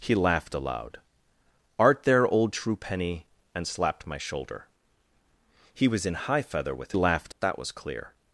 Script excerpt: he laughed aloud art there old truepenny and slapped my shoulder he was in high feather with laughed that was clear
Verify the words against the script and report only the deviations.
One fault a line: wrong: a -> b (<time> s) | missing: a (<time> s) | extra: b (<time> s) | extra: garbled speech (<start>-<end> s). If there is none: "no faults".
no faults